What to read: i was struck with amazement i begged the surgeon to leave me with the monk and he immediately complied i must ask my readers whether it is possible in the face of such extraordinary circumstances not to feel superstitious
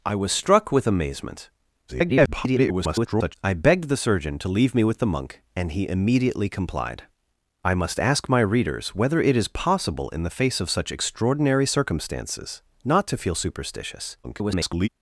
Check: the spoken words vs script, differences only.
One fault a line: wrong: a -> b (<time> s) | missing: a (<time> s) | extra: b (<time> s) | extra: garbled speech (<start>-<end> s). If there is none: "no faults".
extra: garbled speech (1.9-3.3 s)
extra: garbled speech (14.2-14.9 s)